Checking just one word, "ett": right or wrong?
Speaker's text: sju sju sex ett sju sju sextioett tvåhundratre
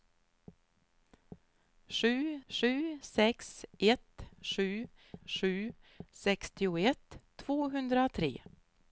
right